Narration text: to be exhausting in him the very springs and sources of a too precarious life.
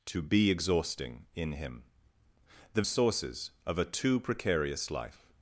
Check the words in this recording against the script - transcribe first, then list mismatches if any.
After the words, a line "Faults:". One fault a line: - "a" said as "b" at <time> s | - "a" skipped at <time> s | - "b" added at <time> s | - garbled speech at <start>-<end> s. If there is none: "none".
to be exhausting in him the sources of a too precarious life.
Faults:
- "very springs and" skipped at 2.8 s